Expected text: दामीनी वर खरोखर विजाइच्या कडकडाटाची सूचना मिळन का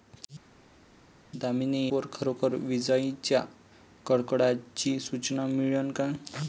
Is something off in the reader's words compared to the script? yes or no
no